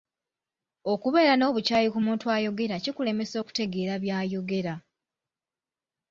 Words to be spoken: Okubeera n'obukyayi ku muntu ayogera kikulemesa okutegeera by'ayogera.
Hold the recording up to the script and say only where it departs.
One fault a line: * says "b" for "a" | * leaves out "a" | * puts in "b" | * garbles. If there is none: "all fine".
all fine